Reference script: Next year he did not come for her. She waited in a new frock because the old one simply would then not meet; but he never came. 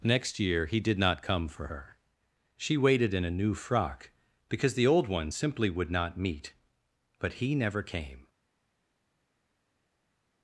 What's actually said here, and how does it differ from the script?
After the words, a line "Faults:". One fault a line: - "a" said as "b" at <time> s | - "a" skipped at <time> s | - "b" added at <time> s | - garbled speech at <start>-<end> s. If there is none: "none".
Next year he did not come for her. She waited in a new frock because the old one simply would not meet; but he never came.
Faults:
- "then" skipped at 5.9 s